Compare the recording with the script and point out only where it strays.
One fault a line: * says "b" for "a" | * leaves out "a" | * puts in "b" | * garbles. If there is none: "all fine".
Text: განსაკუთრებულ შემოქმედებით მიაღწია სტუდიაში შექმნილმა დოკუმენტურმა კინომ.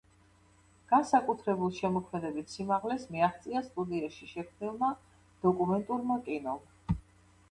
* puts in "სიმაღლეს"